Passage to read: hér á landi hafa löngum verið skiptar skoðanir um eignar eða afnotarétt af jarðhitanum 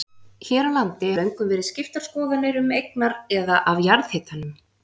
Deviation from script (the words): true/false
true